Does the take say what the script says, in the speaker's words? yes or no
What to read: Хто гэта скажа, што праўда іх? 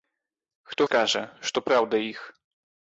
no